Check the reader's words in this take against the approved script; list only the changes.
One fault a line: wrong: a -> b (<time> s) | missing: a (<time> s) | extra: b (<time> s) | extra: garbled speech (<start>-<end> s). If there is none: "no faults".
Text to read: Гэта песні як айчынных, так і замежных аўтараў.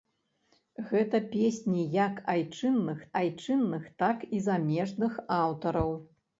extra: айчынных (3.2 s)